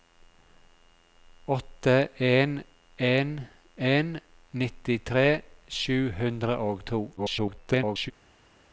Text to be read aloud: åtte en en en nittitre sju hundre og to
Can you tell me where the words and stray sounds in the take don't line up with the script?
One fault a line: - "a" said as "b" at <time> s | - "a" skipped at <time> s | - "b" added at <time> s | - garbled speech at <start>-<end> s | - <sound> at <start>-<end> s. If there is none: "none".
- garbled speech at 7.2-8.1 s